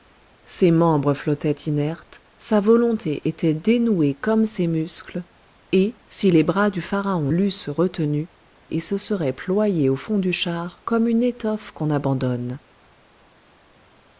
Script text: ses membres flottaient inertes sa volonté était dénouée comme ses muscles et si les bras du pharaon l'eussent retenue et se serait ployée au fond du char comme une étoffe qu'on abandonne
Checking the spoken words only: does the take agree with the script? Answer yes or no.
yes